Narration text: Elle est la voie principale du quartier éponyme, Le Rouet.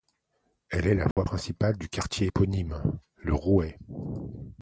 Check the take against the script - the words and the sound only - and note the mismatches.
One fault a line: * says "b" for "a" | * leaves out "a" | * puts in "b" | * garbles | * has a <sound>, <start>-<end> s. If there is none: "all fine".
* has a dropout, 1.1-1.2 s